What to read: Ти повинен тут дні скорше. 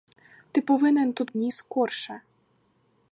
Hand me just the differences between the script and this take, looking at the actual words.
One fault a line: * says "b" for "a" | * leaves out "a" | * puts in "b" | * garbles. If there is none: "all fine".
all fine